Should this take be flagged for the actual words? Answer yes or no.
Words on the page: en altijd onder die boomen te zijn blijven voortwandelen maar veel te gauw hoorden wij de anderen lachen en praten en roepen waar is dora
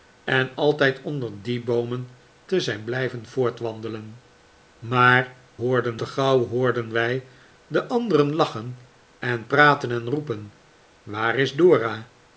yes